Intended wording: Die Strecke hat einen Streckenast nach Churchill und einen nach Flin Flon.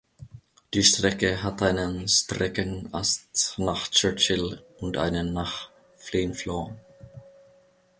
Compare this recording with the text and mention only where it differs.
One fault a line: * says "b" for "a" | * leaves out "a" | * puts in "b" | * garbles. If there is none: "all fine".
all fine